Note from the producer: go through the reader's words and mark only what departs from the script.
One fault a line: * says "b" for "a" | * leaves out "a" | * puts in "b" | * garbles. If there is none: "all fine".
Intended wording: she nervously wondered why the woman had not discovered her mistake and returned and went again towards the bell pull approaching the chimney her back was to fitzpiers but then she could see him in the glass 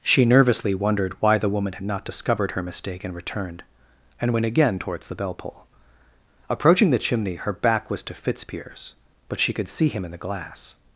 * leaves out "then"